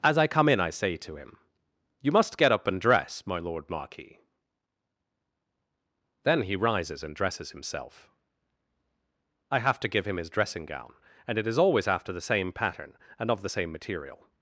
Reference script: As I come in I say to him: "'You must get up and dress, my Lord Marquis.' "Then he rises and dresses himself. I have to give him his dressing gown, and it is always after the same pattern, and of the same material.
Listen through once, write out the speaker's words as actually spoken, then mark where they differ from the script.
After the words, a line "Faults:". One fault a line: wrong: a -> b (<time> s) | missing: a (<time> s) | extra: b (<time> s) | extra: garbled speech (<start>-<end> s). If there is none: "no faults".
As I come in I say to him: "'You must get up and dress, my Lord Marquis.' "Then he rises and dresses himself. I have to give him his dressing gown, and it is always after the same pattern, and of the same material.
Faults:
no faults